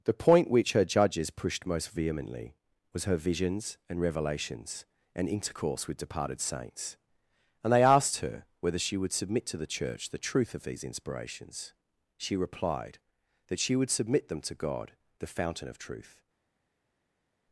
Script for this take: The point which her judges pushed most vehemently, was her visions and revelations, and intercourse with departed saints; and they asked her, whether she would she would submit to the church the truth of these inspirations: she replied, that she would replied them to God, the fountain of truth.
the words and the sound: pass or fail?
fail